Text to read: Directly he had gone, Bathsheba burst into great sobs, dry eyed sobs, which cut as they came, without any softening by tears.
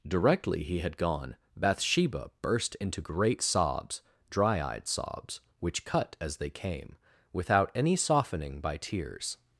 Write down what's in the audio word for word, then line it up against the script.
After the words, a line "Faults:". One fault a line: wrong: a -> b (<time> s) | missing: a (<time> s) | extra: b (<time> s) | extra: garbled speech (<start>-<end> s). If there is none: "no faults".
Directly he had gone, Bathsheba burst into great sobs, dry eyed sobs, which cut as they came, without any softening by tears.
Faults:
no faults